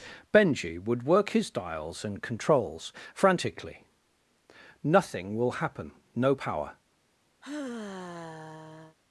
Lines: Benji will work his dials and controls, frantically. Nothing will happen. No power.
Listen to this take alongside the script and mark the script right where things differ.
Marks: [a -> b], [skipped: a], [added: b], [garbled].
Benji [will -> would] work his dials and controls, frantically. Nothing will happen. No power.